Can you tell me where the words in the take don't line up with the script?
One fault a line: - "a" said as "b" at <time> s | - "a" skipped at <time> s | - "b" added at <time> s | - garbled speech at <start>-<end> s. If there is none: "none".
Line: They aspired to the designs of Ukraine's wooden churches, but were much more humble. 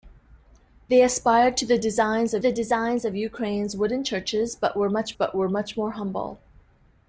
- "the designs of" added at 2.4 s
- "but were much" added at 5.1 s